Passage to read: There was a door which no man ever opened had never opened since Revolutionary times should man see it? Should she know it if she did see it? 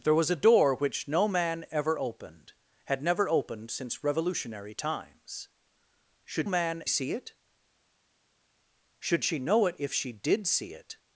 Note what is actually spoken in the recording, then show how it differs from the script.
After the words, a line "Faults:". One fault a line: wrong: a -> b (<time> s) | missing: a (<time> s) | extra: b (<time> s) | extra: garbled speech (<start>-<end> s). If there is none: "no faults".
There was a door which no man ever opened had never opened since Revolutionary times should man see it? Should she know it if she did see it?
Faults:
no faults